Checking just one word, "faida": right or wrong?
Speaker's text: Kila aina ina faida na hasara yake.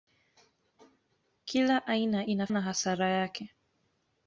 wrong